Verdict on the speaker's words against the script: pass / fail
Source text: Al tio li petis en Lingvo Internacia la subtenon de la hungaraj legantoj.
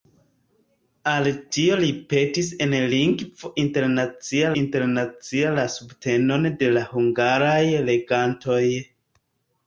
fail